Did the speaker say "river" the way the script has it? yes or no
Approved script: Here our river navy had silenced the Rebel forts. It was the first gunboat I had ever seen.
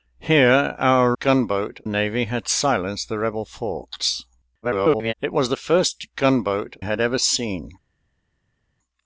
no